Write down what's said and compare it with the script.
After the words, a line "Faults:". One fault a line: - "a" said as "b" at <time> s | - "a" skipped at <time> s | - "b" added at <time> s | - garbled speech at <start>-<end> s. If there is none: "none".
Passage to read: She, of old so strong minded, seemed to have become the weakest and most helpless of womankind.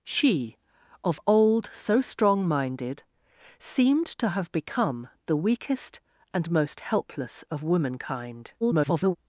She, of old so strong minded, seemed to have become the weakest and most helpless of womankind. [garbled]
Faults:
- garbled speech at 8.6-9.2 s